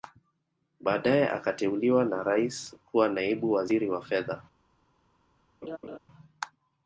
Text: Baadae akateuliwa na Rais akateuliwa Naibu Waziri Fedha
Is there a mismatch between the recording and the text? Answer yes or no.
yes